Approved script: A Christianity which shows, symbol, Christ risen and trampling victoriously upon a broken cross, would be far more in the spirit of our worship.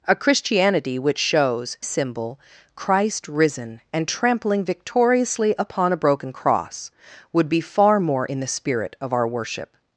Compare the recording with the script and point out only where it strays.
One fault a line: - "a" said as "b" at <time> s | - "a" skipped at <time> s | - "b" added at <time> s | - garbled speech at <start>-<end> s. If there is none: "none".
none